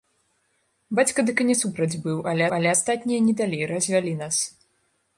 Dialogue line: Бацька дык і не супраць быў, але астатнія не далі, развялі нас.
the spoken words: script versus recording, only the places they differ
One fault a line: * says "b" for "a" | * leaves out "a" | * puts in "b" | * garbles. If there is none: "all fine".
* puts in "але"